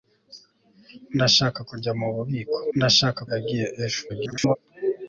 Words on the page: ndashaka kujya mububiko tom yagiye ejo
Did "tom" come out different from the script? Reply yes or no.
yes